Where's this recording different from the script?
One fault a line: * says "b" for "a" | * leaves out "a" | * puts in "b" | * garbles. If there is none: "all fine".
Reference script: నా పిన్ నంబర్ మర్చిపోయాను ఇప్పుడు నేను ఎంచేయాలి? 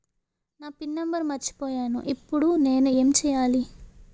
all fine